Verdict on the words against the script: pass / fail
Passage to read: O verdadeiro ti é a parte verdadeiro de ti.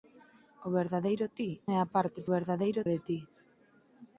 pass